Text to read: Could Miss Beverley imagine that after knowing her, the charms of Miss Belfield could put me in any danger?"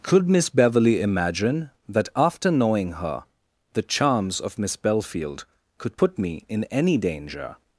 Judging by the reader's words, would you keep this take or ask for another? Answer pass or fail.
pass